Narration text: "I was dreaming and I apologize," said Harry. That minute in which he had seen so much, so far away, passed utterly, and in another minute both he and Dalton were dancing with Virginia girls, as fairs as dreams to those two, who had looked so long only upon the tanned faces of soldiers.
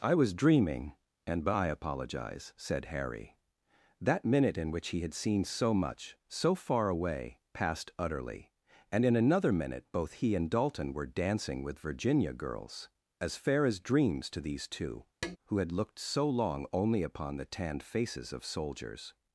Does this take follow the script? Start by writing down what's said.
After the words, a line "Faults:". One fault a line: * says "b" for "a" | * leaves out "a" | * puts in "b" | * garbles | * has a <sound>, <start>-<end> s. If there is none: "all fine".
"I was dreaming and I apologize," said Harry. That minute in which he had seen so much, so far away, passed utterly, and in another minute both he and Dalton were dancing with Virginia girls, as fair as dreams to these two, who had looked so long only upon the tanned faces of soldiers.
Faults:
* says "fair" for "fairs"
* says "these" for "those"
* has a tap, 15.2-15.4 s